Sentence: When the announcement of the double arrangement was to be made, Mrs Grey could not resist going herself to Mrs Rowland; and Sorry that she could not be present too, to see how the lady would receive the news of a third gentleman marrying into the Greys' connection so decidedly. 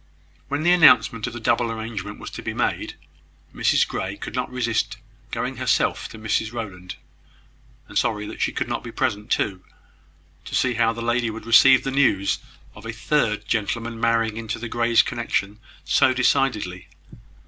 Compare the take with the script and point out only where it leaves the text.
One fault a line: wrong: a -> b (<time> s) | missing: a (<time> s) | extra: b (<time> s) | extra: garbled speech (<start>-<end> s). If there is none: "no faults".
no faults